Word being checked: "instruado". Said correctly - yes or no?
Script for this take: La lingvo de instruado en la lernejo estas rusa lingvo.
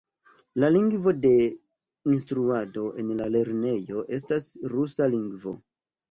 yes